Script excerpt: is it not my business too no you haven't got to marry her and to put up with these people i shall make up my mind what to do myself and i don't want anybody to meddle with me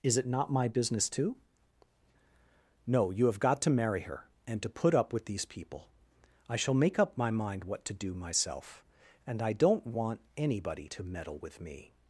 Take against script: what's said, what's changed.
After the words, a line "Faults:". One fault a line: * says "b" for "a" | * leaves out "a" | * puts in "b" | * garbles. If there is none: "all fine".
is it not my business too no you have got to marry her and to put up with these people i shall make up my mind what to do myself and i don't want anybody to meddle with me
Faults:
* says "have" for "haven't"